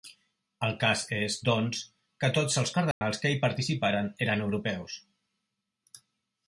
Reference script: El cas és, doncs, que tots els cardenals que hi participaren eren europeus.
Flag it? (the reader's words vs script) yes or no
no